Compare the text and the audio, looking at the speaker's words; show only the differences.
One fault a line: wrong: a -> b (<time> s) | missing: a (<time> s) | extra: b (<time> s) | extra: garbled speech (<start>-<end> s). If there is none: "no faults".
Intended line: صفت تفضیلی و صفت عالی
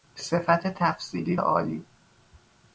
missing: و صفت (1.4 s)